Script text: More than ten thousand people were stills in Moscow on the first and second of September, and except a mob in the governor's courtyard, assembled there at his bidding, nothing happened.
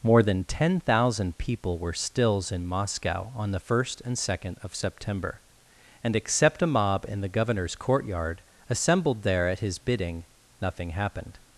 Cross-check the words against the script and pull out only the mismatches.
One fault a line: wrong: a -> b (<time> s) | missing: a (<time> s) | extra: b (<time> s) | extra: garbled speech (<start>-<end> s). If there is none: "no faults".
no faults